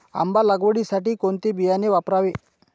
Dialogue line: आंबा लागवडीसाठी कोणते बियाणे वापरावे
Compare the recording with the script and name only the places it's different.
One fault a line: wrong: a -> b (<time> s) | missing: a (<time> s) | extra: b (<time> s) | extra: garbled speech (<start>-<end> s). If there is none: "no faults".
no faults